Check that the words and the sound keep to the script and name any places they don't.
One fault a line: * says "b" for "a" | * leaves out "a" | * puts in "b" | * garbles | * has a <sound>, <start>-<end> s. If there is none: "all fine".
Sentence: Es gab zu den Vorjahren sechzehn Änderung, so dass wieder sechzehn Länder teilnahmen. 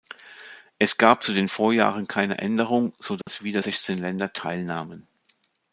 * says "keine" for "sechzehn"
* has a dropout, 3.2-3.3 s